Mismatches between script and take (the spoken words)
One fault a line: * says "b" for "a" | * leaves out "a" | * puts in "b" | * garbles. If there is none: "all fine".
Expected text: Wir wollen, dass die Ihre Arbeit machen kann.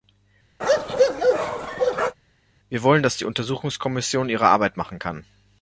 * puts in "Untersuchungskommission"